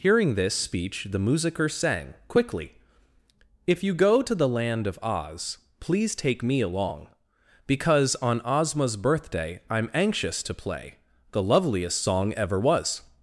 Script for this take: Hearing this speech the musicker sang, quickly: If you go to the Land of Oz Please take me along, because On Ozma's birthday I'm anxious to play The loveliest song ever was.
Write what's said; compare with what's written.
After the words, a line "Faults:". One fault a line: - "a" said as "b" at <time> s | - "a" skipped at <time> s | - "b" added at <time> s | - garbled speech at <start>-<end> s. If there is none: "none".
Hearing this speech the musicker sang, quickly: If you go to the Land of Oz Please take me along, because On Ozma's birthday I'm anxious to play The loveliest song ever was.
Faults:
none